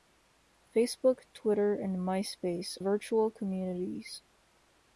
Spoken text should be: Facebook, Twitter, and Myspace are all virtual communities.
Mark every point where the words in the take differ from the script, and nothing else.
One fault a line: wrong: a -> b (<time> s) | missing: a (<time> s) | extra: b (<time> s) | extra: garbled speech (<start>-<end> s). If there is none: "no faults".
missing: are all (2.8 s)